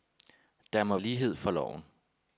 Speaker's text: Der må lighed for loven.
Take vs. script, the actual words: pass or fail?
pass